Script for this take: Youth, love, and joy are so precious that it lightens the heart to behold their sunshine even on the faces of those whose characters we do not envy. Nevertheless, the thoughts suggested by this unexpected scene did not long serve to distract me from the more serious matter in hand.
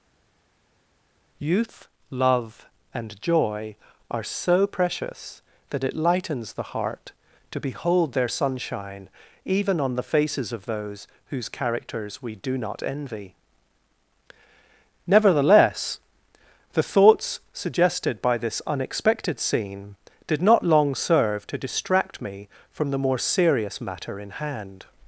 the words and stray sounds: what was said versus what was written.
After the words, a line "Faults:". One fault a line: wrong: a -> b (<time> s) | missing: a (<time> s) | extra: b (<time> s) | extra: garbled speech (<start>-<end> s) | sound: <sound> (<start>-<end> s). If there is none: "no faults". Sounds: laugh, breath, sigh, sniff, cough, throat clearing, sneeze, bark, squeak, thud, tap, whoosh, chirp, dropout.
Youth, love, and joy are so precious that it lightens the heart to behold their sunshine even on the faces of those whose characters we do not envy. Nevertheless, the thoughts suggested by this unexpected scene did not long serve to distract me from the more serious matter in hand.
Faults:
no faults